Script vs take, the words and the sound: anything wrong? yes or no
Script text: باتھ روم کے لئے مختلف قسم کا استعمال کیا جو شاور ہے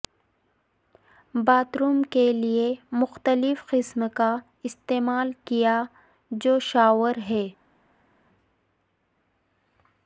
no